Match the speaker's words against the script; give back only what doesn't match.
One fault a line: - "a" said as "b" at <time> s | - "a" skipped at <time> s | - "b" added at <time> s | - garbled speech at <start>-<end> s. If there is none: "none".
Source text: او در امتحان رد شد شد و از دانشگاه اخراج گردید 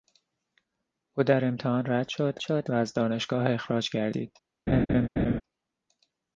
none